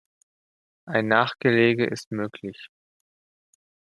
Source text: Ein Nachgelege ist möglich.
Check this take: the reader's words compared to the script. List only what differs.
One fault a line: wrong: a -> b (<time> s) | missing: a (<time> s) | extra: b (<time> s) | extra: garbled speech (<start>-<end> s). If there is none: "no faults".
no faults